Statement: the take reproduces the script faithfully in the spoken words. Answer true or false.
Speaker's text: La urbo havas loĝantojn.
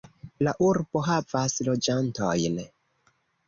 true